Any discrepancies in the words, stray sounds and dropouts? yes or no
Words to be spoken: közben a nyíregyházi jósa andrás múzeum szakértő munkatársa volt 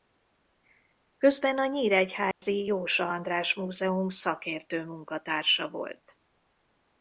yes